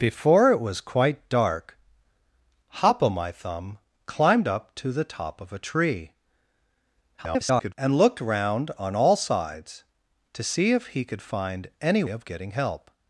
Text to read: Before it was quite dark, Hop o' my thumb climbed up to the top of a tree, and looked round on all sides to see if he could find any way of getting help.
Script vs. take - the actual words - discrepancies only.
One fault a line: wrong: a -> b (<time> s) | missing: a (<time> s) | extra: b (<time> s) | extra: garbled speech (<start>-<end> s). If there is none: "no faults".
extra: garbled speech (7.2-7.7 s)
missing: way (12.0 s)